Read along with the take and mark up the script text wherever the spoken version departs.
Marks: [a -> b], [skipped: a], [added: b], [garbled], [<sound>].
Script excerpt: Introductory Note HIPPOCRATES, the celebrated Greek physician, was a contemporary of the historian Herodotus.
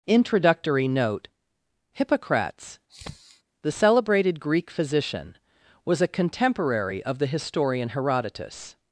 Introductory Note HIPPOCRATES, [sniff] the celebrated Greek physician, was a contemporary of the historian Herodotus.